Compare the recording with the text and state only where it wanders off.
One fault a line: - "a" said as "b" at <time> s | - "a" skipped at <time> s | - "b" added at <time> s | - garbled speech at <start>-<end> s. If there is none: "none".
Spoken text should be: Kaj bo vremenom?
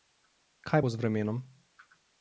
- "z" added at 0.9 s